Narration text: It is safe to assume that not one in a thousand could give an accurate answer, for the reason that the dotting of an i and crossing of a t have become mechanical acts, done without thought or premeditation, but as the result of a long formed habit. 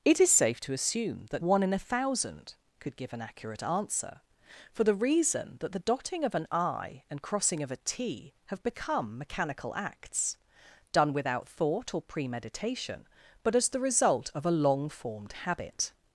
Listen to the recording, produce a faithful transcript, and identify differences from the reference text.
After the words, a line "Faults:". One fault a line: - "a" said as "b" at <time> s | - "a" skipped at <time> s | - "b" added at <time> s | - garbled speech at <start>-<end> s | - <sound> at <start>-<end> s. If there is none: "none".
It is safe to assume that one in a thousand could give an accurate answer, for the reason that the dotting of an i and crossing of a t have become mechanical acts, done without thought or premeditation, but as the result of a long formed habit.
Faults:
- "not" skipped at 1.4 s